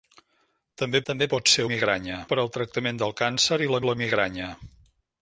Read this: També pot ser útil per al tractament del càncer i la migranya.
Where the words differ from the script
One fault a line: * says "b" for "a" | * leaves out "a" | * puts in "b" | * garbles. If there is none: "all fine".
* puts in "també"
* says "migranya" for "útil"
* puts in "la"